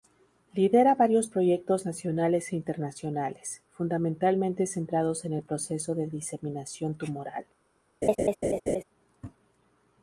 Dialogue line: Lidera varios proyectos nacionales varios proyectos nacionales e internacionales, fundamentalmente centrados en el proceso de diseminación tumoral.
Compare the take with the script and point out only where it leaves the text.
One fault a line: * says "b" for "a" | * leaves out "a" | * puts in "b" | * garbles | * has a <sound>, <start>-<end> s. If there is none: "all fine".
* leaves out "varios proyectos nacionales"
* has a laugh, 8.0-8.8 s